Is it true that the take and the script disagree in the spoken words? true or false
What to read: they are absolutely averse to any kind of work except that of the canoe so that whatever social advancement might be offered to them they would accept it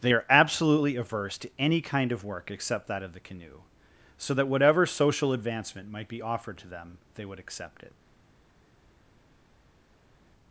false